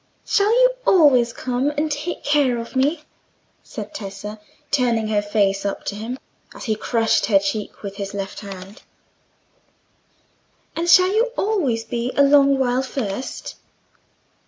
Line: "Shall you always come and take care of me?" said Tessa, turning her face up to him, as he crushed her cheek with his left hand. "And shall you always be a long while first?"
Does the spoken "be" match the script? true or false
true